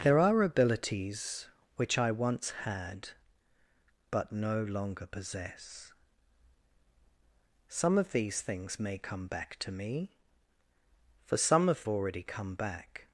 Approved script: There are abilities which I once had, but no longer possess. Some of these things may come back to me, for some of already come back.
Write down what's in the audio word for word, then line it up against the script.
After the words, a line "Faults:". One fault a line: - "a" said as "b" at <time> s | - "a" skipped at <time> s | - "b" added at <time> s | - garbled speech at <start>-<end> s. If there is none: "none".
There are abilities which I once had, but no longer possess. Some of these things may come back to me, for some of already come back.
Faults:
none